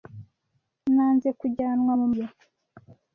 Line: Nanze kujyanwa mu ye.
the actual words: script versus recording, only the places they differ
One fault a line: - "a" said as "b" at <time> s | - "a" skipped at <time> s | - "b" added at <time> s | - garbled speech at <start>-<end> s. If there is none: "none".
none